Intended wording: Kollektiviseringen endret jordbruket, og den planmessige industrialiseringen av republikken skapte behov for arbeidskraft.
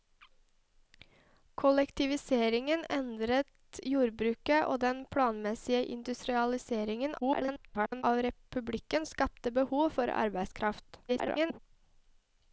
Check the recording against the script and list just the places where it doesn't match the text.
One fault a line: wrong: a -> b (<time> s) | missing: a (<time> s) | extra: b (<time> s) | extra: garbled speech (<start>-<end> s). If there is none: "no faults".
extra: garbled speech (7.2-8.0 s)
extra: garbled speech (11.1-11.6 s)